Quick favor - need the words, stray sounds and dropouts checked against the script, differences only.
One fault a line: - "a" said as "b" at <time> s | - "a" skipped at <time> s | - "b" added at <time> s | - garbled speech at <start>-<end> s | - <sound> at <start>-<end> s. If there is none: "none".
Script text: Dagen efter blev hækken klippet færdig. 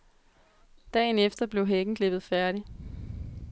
none